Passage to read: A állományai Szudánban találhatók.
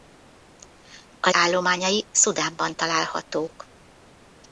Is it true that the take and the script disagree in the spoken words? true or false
false